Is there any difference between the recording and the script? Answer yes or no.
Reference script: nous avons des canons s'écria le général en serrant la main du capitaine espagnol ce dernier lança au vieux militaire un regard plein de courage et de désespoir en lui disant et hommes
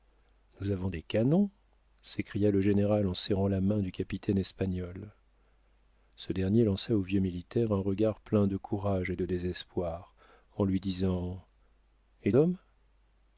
no